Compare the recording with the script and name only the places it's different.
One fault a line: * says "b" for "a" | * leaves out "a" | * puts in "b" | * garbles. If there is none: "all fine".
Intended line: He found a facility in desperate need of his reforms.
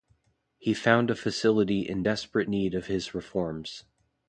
all fine